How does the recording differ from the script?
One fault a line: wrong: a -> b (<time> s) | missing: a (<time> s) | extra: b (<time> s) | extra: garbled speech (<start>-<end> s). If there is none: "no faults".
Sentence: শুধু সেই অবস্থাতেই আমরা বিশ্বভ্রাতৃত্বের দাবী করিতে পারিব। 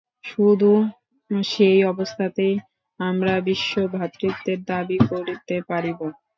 no faults